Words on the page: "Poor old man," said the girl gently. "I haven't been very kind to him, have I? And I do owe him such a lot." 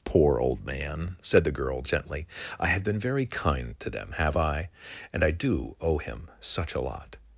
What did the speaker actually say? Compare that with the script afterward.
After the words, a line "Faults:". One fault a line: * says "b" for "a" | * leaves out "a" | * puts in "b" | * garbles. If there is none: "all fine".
"Poor old man," said the girl gently. "I have been very kind to them, have I? And I do owe him such a lot."
Faults:
* says "have" for "haven't"
* says "them" for "him"